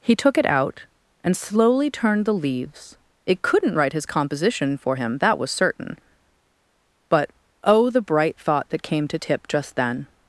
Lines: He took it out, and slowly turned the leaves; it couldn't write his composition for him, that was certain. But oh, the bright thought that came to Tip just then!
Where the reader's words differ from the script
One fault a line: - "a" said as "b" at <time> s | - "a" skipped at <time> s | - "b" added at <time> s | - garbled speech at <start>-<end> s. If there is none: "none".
none